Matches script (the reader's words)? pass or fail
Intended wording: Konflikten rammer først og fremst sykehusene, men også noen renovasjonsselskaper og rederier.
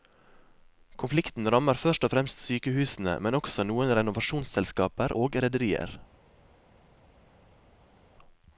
pass